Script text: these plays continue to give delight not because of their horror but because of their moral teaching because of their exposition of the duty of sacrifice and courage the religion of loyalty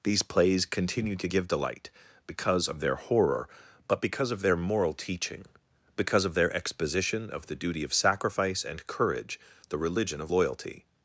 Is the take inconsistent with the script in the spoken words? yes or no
yes